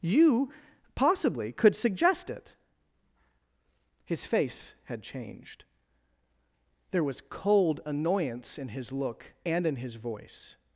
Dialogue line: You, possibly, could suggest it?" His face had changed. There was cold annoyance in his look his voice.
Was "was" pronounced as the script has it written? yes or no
yes